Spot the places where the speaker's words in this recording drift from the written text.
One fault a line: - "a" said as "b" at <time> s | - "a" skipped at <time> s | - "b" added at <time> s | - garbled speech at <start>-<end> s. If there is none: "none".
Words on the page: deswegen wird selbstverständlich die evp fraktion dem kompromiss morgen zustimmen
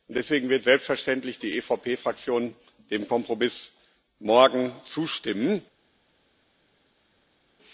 none